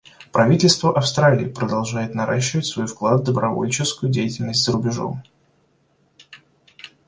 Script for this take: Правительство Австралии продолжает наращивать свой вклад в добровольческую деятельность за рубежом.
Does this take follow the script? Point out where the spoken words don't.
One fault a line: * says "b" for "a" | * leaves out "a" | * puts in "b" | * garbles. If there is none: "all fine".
all fine